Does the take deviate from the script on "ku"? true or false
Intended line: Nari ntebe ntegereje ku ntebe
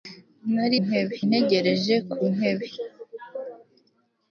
false